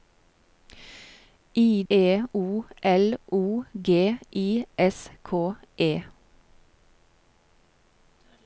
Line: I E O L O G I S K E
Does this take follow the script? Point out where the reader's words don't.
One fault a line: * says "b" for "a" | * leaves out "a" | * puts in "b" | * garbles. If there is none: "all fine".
all fine